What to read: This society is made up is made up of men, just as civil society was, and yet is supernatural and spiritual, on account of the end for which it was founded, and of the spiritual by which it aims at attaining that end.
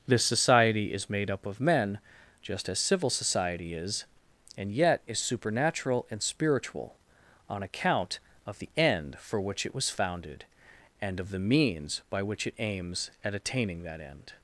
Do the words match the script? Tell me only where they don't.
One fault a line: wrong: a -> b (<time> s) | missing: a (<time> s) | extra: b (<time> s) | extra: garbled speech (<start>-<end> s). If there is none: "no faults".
missing: is made up (1.4 s)
wrong: was -> is (3.7 s)
wrong: spiritual -> means (11.4 s)